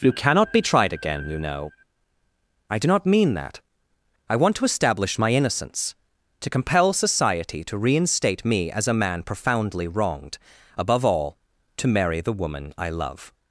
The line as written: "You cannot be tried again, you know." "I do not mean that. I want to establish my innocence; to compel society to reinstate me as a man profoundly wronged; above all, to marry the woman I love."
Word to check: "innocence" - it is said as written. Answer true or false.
true